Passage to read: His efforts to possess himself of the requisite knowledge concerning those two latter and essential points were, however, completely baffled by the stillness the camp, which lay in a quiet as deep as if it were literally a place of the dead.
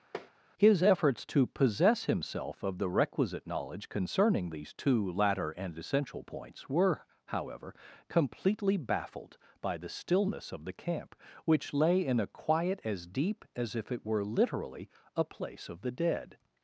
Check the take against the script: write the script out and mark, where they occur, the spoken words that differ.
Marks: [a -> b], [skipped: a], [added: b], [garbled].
His efforts to possess himself of the requisite knowledge concerning [those -> these] two latter and essential points were, however, completely baffled by the stillness [added: of] the camp, which lay in a quiet as deep as if it were literally a place of the dead.